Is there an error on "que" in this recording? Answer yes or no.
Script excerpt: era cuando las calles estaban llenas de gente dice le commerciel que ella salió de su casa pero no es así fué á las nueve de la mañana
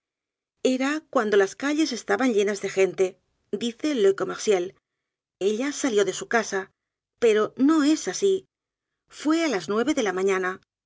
yes